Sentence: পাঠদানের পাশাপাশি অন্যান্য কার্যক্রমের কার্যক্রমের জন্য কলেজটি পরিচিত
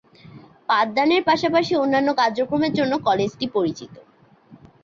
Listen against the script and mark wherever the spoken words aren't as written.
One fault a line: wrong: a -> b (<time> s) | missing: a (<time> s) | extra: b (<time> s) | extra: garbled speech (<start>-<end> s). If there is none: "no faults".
missing: কার্যক্রমের (2.7 s)